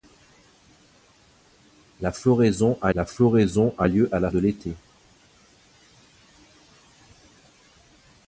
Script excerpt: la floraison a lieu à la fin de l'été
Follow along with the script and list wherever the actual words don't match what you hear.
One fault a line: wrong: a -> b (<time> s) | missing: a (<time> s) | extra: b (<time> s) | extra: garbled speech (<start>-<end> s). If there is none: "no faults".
extra: la floraison a (2.9 s)
missing: fin (4.3 s)